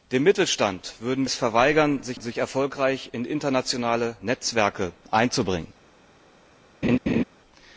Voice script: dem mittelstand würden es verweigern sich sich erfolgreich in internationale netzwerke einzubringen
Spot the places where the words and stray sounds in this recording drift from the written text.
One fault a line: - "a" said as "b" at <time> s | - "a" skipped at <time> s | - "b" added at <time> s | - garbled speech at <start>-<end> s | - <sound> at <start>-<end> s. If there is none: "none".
- laugh at 6.8-7.2 s